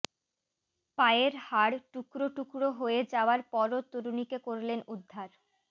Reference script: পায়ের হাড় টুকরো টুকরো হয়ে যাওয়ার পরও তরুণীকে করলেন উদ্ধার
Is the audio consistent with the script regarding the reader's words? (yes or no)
yes